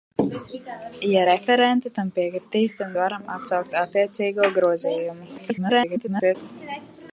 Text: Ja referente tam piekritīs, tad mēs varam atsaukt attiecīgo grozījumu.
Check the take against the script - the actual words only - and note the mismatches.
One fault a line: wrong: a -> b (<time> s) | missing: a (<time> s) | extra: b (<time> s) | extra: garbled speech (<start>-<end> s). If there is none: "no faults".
missing: mēs (2.9 s)
extra: garbled speech (5.4-6.4 s)